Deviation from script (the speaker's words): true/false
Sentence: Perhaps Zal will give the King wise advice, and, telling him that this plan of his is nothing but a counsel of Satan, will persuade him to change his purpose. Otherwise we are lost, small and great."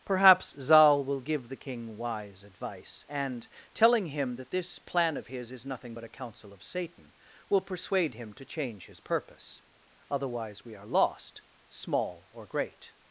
true